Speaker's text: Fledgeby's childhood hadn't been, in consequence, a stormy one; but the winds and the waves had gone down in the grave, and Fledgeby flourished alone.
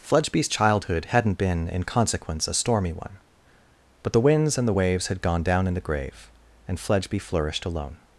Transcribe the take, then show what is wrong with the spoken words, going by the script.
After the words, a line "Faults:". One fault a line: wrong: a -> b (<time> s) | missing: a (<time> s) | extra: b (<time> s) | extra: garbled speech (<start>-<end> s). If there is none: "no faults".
Fledgeby's childhood hadn't been, in consequence, a stormy one; but the winds and the waves had gone down in the grave, and Fledgeby flourished alone.
Faults:
no faults